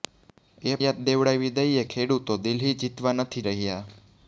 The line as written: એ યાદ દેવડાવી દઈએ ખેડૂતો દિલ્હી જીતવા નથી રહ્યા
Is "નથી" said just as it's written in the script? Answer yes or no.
yes